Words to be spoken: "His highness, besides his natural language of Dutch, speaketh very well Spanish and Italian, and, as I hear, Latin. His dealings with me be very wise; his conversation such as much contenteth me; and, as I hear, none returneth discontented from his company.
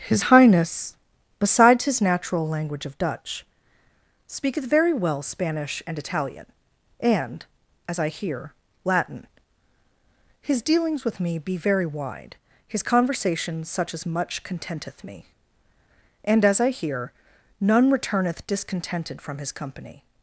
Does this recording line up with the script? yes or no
no